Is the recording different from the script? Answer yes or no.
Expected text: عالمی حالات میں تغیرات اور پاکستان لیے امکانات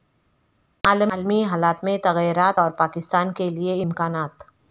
yes